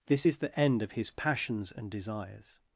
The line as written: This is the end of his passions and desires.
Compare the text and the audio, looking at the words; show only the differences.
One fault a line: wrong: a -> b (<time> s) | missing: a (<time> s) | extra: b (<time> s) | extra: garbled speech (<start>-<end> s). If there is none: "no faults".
no faults